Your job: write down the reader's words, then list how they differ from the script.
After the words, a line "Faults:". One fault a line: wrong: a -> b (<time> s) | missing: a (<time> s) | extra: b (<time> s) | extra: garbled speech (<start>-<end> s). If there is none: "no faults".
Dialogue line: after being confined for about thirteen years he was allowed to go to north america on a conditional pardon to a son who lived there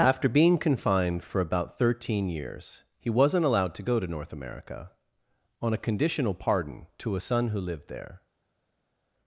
after being confined for about thirteen years he wasn't allowed to go to north america on a conditional pardon to a son who lived there
Faults:
wrong: was -> wasn't (3.1 s)